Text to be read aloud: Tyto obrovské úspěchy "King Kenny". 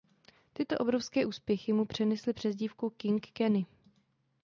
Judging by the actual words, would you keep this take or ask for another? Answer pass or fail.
fail